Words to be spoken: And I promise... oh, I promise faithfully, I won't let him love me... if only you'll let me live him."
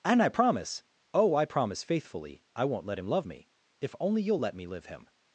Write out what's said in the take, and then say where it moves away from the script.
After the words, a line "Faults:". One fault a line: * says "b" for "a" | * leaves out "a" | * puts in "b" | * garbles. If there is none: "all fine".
And I promise... oh, I promise faithfully, I won't let him love me... if only you'll let me live him."
Faults:
all fine